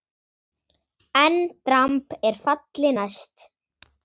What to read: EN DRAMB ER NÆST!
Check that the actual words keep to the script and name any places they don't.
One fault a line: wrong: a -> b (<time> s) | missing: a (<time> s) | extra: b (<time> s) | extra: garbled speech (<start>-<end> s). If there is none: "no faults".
extra: FALLI (2.4 s)